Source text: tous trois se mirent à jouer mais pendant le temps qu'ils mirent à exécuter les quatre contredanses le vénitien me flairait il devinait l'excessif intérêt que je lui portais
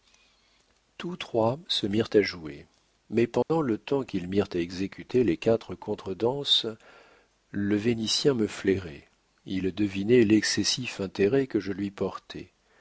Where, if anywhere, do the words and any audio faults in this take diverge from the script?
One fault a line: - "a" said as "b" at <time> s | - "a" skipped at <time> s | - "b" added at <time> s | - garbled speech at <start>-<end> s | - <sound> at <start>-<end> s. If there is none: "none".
- dropout at 3.4-3.5 s